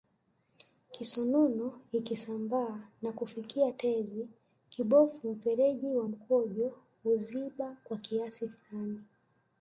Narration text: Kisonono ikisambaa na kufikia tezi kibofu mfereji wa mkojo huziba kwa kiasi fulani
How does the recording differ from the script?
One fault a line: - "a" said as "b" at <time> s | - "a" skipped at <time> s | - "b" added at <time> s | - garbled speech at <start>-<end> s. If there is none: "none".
none